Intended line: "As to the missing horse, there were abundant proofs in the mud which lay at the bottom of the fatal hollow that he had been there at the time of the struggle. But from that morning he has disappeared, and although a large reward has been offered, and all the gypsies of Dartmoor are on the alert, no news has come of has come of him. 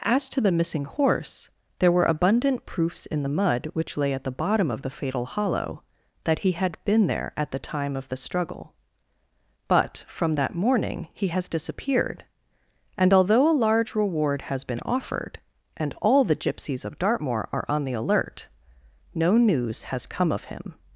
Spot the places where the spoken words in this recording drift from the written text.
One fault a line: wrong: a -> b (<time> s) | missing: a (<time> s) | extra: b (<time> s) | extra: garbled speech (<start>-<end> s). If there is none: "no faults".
missing: has come of (20.4 s)